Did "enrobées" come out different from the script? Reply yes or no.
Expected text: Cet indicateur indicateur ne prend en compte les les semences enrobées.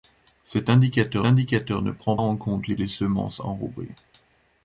no